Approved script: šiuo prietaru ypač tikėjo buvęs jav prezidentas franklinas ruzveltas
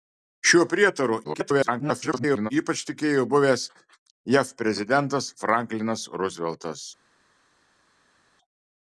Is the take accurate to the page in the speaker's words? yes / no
no